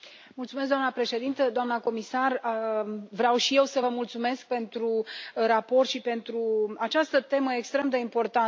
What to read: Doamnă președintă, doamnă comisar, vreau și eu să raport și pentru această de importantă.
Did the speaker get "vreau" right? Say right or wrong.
right